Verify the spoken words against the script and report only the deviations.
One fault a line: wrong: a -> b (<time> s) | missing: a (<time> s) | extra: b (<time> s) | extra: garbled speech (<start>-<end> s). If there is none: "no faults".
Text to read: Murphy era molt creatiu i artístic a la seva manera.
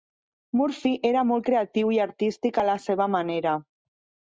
no faults